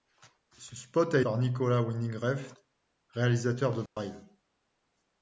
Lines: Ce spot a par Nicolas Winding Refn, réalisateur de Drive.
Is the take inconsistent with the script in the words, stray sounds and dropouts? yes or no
yes